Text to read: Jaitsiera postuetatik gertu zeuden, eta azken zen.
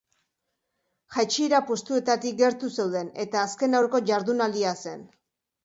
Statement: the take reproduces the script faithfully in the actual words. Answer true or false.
false